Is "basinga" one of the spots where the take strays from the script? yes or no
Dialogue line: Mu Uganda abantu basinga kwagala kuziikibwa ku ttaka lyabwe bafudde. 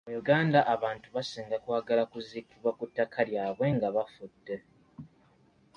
no